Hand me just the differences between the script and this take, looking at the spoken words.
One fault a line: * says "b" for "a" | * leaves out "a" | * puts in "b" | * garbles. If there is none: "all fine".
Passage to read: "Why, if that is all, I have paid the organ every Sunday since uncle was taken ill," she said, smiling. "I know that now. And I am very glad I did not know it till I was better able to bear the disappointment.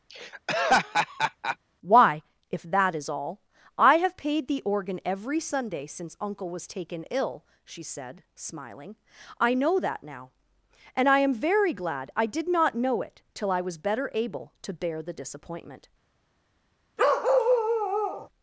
all fine